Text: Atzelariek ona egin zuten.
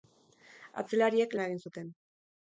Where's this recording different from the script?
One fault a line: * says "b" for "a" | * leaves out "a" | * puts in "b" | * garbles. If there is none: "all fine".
all fine